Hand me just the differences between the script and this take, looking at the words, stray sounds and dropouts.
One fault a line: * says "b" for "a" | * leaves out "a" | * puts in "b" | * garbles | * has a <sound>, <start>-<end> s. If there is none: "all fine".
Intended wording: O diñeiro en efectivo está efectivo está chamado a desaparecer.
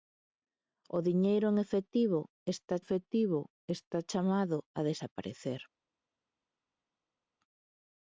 all fine